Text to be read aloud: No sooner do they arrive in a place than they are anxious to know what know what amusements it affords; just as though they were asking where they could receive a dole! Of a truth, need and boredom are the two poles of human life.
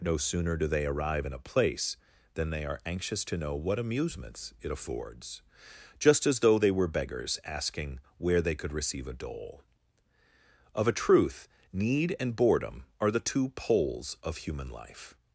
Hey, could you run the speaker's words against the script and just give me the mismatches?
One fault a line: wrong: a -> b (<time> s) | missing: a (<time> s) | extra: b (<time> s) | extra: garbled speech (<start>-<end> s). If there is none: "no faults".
missing: know what (3.8 s)
extra: beggars (6.9 s)